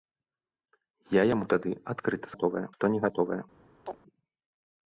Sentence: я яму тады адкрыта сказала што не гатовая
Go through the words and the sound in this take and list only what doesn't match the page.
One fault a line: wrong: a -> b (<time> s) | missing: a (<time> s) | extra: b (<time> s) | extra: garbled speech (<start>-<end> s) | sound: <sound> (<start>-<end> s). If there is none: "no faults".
wrong: сказала -> гатовая (2.3 s)
sound: chirp (3.9-4.0 s)